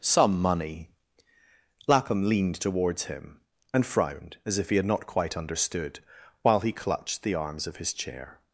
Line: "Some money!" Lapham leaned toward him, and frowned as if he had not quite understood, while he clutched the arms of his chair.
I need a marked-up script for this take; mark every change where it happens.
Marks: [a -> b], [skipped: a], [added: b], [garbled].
"Some money!" Lapham leaned [toward -> towards] him, and frowned as if he had not quite understood, while he clutched the arms of his chair.